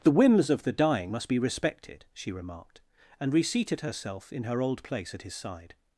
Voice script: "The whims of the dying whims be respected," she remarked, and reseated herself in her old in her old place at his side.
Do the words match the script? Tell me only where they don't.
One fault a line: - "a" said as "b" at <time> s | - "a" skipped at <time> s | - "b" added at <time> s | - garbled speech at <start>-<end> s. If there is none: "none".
- "whims" said as "must" at 1.1 s
- "in her old" skipped at 4.8 s